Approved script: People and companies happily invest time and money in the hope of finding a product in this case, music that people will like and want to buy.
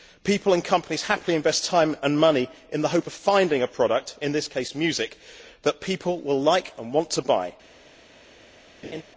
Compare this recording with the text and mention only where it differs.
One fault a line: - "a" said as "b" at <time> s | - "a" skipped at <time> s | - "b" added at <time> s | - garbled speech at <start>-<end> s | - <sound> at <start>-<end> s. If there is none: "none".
- laugh at 8.8-9.0 s